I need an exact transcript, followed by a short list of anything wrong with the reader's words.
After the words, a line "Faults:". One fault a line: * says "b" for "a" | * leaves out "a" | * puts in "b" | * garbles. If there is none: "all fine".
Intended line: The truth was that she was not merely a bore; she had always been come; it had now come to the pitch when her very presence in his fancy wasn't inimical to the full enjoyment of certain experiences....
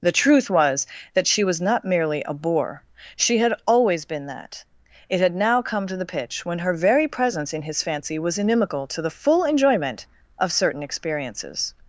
The truth was that she was not merely a bore; she had always been that; it had now come to the pitch when her very presence in his fancy was inimical to the full enjoyment of certain experiences....
Faults:
* says "that" for "come"
* says "was" for "wasn't"